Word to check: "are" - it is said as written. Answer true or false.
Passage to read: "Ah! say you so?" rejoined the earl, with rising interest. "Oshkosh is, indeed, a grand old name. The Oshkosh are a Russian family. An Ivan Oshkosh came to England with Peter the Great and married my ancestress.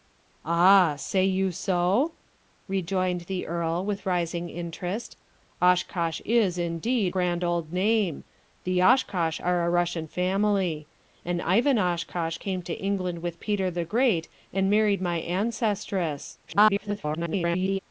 true